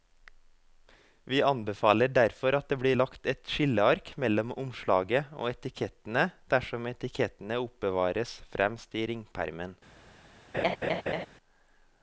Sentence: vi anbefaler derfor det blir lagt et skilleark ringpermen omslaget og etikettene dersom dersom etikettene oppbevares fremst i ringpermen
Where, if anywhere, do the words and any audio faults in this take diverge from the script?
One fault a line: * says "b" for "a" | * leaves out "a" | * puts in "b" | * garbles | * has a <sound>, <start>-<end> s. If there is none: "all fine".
* puts in "at"
* says "mellom" for "ringpermen"
* leaves out "dersom"
* has a laugh, 10.5-11.3 s